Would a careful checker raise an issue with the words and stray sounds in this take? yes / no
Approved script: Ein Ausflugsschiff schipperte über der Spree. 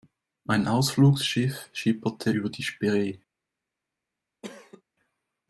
yes